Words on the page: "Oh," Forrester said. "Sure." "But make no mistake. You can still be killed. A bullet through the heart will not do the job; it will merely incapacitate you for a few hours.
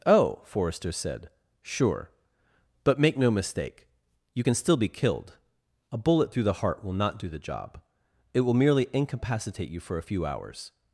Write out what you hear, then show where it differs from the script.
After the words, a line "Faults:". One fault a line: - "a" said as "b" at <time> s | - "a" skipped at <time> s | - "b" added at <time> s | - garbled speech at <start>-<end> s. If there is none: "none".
"Oh," Forrester said. "Sure." "But make no mistake. You can still be killed. A bullet through the heart will not do the job; it will merely incapacitate you for a few hours.
Faults:
none